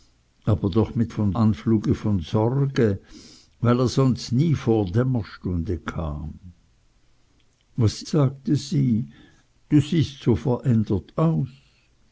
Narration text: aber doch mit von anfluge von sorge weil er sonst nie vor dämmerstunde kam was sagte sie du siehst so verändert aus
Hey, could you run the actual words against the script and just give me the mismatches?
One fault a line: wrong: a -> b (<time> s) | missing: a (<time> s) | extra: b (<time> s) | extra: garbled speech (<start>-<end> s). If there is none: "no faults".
no faults